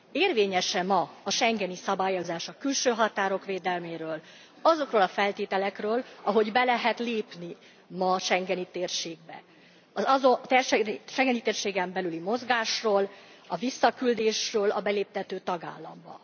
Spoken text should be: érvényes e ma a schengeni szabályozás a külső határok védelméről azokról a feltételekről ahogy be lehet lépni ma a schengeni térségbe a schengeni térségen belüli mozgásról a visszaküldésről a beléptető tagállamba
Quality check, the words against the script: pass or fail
pass